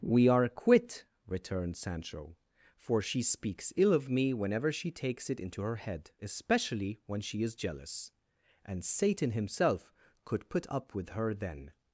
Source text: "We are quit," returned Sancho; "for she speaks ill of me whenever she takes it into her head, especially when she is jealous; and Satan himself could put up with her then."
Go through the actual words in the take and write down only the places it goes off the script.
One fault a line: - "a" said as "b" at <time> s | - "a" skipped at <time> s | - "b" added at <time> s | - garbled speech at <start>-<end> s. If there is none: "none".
none